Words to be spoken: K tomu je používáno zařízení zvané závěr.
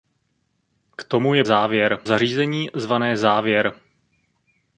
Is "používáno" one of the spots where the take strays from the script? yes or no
yes